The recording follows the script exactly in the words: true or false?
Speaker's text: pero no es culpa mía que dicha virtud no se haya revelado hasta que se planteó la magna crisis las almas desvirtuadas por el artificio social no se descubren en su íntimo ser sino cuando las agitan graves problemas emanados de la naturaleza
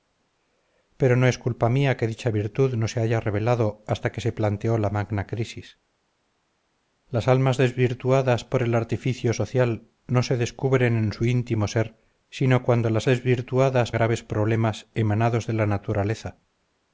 false